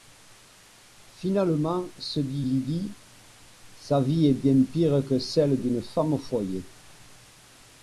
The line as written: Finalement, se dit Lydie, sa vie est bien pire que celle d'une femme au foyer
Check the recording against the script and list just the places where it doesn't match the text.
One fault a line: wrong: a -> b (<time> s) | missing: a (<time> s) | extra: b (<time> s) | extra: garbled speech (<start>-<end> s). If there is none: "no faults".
no faults